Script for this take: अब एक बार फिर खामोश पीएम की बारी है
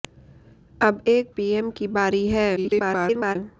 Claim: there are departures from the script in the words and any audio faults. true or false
true